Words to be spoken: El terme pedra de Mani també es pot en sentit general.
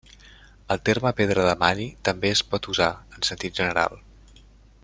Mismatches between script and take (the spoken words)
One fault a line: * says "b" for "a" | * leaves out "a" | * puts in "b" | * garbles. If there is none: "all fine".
* puts in "usar"